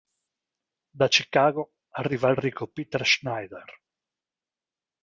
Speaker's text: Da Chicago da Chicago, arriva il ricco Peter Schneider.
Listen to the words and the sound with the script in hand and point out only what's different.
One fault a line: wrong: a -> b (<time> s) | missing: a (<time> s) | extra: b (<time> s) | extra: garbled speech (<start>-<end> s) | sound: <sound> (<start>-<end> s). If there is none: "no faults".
missing: da Chicago (1.7 s)